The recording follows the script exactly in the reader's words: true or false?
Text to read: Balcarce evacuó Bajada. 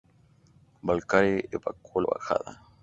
true